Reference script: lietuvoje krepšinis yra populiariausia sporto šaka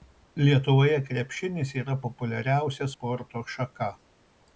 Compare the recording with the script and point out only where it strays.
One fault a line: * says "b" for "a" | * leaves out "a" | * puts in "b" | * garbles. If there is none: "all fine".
all fine